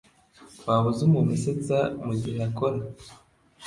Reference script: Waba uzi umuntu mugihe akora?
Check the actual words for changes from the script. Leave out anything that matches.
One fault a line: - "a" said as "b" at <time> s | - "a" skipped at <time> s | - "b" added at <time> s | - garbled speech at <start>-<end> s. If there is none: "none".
- "usetsa" added at 1.4 s